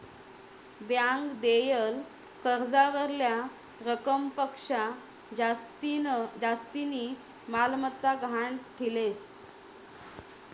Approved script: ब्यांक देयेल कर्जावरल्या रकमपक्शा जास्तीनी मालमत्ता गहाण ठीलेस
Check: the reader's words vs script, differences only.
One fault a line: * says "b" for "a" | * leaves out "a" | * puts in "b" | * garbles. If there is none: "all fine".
all fine